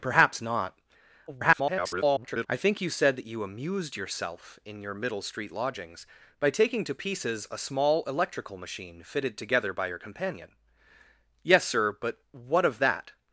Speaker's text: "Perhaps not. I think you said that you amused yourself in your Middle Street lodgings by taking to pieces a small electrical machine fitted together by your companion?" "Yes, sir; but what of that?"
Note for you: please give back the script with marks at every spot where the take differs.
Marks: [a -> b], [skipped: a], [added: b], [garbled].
"Perhaps not. [garbled] I think you said that you amused yourself in your Middle Street lodgings by taking to pieces a small electrical machine fitted together by your companion?" "Yes, sir; but what of that?"